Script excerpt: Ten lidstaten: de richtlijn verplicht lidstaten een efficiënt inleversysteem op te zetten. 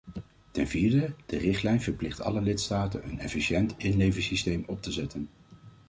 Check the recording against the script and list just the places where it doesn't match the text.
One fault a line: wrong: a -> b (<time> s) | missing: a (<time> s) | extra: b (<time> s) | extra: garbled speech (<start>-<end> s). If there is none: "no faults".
wrong: lidstaten -> vierde (0.7 s)
extra: alle (2.2 s)